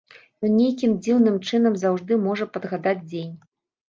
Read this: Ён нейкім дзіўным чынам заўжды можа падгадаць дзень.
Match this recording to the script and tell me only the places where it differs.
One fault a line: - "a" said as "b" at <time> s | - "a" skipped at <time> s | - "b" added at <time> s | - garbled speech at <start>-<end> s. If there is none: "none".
none